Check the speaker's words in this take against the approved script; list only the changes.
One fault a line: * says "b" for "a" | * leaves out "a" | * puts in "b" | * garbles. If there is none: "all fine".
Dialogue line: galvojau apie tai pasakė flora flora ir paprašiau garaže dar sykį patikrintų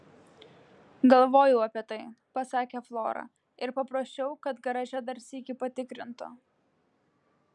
* leaves out "flora"
* puts in "kad"